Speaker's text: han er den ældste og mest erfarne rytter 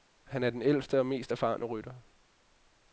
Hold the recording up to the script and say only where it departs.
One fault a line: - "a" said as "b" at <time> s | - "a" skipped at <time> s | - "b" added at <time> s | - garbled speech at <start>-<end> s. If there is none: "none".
none